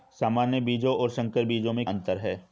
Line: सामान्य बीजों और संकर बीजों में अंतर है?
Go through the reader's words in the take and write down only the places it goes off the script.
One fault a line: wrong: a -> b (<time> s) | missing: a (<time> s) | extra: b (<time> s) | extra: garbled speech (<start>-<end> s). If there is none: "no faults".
no faults